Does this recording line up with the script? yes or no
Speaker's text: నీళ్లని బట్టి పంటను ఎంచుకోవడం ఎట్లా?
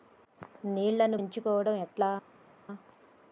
no